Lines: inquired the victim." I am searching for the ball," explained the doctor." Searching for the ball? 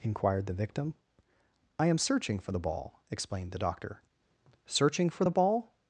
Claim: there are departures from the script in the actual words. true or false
false